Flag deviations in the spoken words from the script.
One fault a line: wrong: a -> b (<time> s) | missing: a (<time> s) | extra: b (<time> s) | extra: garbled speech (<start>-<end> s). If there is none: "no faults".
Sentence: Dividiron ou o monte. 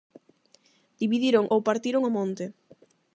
extra: partiron (1.7 s)